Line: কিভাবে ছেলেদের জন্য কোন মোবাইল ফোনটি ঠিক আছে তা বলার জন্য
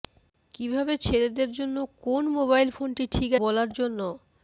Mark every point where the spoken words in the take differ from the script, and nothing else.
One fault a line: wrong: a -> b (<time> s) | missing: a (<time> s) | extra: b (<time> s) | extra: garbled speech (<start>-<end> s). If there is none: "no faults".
missing: আছে তা (3.3 s)